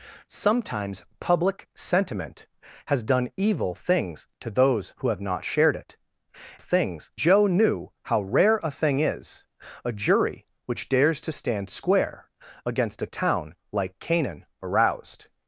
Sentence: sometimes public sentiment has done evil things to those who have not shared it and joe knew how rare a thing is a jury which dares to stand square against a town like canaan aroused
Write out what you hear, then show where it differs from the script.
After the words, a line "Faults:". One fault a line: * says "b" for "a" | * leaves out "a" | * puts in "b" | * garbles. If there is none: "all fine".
sometimes public sentiment has done evil things to those who have not shared it things joe knew how rare a thing is a jury which dares to stand square against a town like canaan aroused
Faults:
* says "things" for "and"